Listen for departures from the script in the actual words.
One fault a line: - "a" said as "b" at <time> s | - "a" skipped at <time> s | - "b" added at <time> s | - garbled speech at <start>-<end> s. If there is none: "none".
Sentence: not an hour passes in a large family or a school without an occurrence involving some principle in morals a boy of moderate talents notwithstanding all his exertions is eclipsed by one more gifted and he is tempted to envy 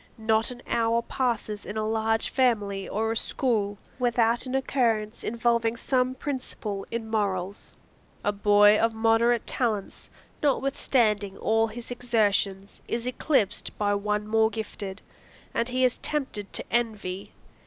none